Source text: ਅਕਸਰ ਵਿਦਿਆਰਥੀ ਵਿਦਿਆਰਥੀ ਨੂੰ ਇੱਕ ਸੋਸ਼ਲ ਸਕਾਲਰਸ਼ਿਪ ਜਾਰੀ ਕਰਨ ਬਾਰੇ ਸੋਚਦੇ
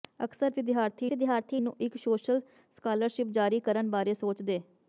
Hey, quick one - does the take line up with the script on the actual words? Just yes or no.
yes